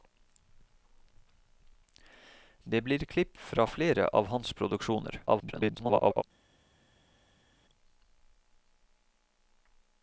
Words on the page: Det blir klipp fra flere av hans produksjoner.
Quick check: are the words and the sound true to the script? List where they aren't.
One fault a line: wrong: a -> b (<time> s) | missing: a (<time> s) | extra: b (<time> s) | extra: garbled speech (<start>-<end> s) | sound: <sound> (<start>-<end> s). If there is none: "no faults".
extra: garbled speech (5.3-6.2 s)